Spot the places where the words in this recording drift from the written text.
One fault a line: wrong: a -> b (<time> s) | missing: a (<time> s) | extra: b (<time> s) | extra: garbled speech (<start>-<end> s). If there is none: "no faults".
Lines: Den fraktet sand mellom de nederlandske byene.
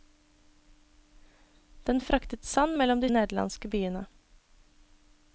no faults